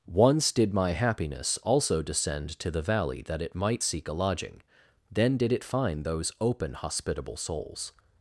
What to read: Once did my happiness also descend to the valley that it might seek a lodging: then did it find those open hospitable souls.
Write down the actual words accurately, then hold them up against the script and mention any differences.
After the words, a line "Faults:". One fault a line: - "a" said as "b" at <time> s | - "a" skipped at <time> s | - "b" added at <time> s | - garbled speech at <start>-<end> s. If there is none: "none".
Once did my happiness also descend to the valley that it might seek a lodging: then did it find those open hospitable souls.
Faults:
none